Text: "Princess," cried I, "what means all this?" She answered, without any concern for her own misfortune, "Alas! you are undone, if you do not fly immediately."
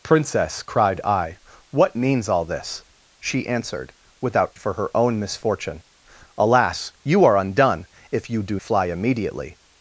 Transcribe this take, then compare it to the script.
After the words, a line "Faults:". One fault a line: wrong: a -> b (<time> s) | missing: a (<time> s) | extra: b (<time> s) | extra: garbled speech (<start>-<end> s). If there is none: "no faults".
"Princess," cried I, "what means all this?" She answered, without for her own misfortune, "Alas! you are undone, if you do fly immediately."
Faults:
missing: any concern (4.5 s)
missing: not (8.6 s)